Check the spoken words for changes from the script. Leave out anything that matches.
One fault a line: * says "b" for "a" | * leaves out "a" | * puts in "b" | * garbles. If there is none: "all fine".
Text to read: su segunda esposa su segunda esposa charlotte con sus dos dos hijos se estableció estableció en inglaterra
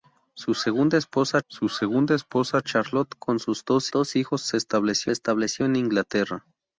all fine